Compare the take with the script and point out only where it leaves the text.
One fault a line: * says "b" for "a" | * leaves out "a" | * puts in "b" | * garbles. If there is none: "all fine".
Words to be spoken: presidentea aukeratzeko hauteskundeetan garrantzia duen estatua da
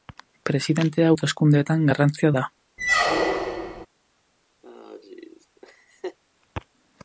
* leaves out "aukeratzeko"
* leaves out "duen estatua"